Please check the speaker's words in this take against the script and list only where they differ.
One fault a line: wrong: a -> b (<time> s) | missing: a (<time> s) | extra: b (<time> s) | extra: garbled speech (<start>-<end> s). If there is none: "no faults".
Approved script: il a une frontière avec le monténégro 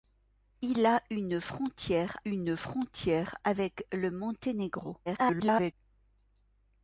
extra: une frontière (2.3 s)
extra: garbled speech (5.1-5.7 s)